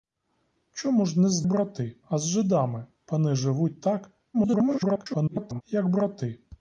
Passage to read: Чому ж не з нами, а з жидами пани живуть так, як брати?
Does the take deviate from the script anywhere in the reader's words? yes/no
yes